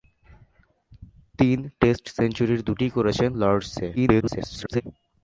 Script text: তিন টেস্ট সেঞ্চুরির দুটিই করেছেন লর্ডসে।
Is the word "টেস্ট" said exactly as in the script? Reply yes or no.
yes